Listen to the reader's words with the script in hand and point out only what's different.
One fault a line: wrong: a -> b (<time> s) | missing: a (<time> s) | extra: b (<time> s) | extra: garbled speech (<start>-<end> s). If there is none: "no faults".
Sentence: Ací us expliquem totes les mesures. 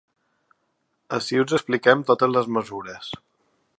no faults